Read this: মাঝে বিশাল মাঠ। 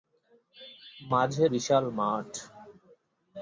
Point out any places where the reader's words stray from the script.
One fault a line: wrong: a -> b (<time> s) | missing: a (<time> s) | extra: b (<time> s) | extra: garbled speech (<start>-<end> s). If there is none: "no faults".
no faults